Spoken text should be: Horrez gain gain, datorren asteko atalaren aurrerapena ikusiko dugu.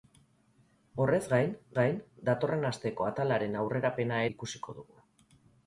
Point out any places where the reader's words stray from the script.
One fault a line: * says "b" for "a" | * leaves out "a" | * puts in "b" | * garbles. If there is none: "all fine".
all fine